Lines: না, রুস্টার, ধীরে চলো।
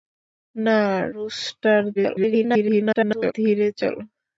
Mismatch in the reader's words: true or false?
true